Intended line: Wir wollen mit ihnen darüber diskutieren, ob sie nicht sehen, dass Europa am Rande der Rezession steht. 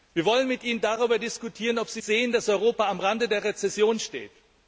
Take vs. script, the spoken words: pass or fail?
fail